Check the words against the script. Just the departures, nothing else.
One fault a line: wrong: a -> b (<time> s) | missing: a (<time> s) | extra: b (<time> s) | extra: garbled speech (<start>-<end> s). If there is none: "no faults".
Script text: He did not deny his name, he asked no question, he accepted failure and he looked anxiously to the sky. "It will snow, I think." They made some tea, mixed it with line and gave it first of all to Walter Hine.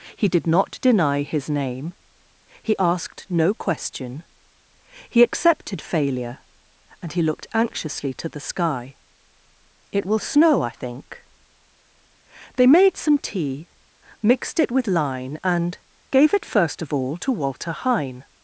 no faults